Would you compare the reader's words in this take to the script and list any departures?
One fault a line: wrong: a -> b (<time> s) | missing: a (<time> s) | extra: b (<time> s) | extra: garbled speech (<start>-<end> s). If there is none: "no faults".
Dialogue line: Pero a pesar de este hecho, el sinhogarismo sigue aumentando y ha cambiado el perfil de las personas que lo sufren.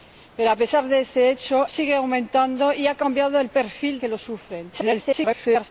missing: el sinhogarismo (1.7 s)
missing: de las personas (4.0 s)
extra: garbled speech (4.7-5.7 s)